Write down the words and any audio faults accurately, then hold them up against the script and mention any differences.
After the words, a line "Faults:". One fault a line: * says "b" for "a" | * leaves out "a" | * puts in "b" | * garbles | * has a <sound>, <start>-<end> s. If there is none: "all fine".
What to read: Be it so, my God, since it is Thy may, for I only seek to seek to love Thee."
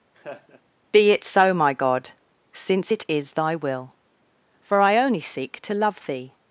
Be it so, my God, since it is Thy will, for I only seek to love Thee."
Faults:
* has a laugh, 0.1-0.6 s
* says "will" for "may"
* leaves out "seek to"